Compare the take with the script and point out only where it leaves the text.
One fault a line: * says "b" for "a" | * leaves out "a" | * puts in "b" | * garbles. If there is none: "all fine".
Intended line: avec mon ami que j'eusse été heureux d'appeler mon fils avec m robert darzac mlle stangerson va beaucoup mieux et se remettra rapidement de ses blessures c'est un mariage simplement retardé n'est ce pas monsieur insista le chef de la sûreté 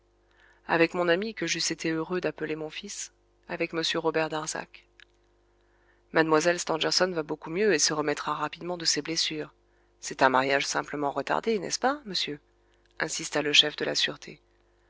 all fine